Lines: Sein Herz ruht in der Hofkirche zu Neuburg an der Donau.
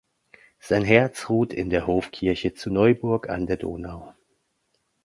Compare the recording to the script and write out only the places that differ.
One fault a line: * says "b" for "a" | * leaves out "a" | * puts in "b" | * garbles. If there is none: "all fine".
all fine